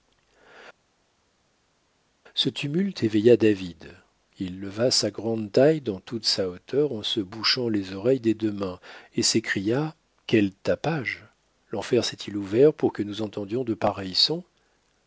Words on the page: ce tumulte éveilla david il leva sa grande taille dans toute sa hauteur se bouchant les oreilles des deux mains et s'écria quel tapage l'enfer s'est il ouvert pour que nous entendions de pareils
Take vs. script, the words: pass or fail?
fail